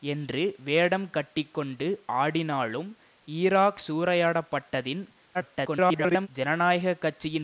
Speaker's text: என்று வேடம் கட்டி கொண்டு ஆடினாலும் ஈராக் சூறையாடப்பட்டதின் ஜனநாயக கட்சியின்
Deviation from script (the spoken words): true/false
true